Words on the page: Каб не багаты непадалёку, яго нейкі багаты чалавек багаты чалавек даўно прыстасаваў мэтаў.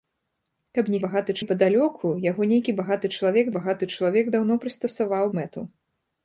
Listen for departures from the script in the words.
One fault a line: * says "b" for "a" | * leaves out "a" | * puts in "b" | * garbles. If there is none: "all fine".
all fine